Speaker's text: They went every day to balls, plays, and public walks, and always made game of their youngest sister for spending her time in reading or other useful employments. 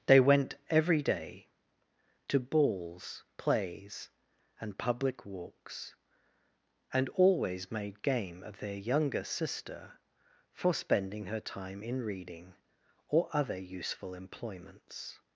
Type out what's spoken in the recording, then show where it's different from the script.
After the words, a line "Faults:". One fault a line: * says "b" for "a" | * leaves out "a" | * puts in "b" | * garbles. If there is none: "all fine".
They went every day to balls, plays, and public walks, and always made game of their younger sister for spending her time in reading or other useful employments.
Faults:
* says "younger" for "youngest"